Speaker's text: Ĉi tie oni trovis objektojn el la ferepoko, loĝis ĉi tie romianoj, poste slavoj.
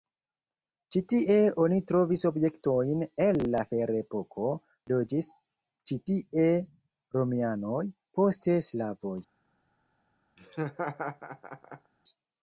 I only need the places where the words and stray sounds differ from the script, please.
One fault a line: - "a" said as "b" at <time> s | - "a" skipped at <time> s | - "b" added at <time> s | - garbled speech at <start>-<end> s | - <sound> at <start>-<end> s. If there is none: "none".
- laugh at 10.4-11.9 s